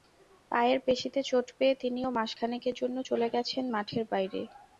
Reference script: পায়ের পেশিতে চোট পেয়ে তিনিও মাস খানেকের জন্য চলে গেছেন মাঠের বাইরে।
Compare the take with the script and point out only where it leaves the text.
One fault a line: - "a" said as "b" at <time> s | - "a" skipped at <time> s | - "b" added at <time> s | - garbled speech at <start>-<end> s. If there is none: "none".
none